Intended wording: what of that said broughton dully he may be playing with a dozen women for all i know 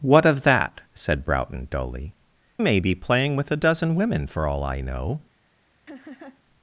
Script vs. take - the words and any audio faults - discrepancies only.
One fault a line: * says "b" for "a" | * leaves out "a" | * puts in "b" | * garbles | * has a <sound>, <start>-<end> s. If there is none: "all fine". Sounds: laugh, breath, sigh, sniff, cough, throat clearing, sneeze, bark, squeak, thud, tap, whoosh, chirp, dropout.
* leaves out "he"
* has a laugh, 5.9-6.4 s